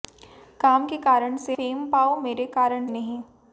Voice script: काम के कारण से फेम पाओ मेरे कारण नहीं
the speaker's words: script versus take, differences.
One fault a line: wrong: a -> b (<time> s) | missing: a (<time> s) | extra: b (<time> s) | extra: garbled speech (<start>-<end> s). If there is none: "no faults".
no faults